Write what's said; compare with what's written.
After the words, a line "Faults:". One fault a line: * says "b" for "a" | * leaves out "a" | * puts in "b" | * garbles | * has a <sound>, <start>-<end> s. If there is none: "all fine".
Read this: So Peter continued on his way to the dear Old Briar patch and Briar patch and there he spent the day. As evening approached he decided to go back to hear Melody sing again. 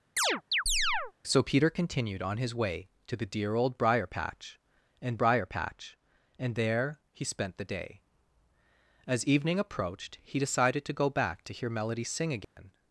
So Peter continued on his way to the dear Old Briar patch and Briar patch and there he spent the day. As evening approached he decided to go back to hear Melody sing again.
Faults:
* has a chirp, 0.2-1.1 s
* has a dropout, 12.4-12.6 s